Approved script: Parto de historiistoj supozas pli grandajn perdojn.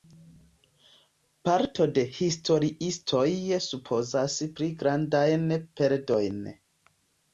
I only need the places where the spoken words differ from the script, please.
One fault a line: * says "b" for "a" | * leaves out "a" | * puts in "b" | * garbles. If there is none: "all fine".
all fine